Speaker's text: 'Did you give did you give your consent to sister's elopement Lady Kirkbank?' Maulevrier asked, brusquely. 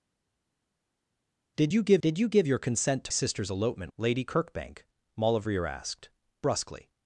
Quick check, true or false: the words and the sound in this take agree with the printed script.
true